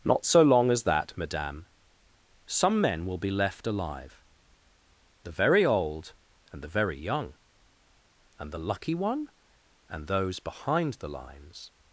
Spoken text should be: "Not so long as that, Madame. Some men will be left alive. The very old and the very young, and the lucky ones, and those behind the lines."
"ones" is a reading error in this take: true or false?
true